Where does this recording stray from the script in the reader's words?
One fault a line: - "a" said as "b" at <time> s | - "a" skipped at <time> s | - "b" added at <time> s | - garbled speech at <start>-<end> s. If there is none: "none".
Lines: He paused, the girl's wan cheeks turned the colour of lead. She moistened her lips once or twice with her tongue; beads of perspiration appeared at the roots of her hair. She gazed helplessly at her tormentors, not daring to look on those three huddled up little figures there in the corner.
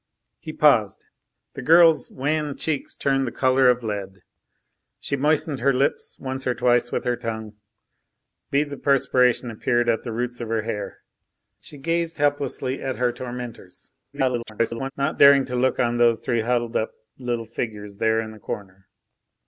- garbled speech at 14.1-14.9 s